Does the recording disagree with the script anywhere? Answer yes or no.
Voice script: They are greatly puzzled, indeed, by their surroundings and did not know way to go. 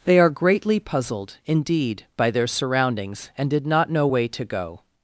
no